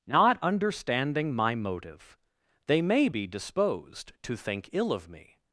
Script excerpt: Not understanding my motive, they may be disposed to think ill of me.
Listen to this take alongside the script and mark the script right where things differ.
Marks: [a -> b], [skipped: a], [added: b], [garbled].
Not understanding my motive, they may be disposed to think ill of me.